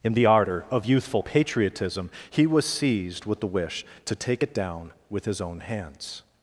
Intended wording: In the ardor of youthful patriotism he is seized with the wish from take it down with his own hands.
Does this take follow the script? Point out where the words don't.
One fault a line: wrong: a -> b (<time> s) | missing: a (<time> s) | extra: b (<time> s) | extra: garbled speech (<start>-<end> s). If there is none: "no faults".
wrong: is -> was (2.4 s)
wrong: from -> to (4.0 s)